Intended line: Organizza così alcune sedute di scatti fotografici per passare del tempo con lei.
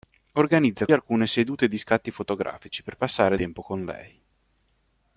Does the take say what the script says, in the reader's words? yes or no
no